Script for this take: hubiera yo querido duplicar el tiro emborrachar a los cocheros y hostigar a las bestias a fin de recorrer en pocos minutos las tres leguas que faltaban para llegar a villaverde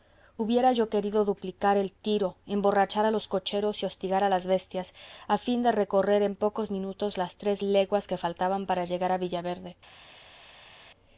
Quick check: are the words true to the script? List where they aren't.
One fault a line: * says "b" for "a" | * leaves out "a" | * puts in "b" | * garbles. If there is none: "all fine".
all fine